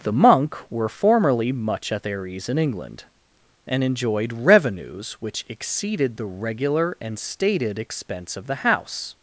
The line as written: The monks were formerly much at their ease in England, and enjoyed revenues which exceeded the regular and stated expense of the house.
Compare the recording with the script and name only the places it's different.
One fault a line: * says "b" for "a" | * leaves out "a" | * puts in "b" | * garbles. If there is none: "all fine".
* says "monk" for "monks"